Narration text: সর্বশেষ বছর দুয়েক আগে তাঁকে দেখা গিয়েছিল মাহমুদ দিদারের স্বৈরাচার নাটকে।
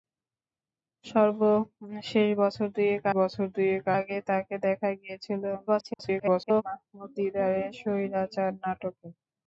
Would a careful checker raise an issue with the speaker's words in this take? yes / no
yes